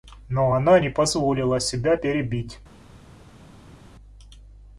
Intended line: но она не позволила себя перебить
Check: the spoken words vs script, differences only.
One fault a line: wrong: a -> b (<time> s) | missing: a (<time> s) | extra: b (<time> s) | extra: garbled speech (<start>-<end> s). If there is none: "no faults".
no faults